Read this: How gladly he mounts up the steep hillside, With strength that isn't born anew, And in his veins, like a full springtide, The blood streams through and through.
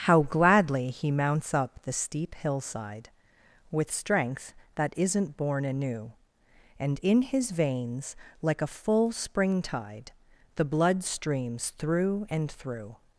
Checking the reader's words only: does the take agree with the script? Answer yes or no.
yes